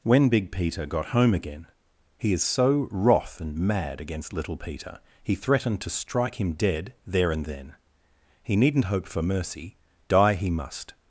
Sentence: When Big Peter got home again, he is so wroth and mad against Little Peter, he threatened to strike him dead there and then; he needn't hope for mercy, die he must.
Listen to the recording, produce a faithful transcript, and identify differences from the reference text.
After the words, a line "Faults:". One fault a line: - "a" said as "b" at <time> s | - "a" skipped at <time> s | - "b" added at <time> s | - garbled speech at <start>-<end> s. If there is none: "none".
When Big Peter got home again, he is so wroth and mad against Little Peter, he threatened to strike him dead there and then; he needn't hope for mercy, die he must.
Faults:
none